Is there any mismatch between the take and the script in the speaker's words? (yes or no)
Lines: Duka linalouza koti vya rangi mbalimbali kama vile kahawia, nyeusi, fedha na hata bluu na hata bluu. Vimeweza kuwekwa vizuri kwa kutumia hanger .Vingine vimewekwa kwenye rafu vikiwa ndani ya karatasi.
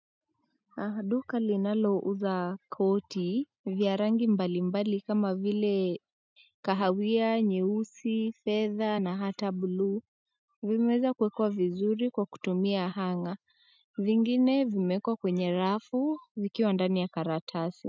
yes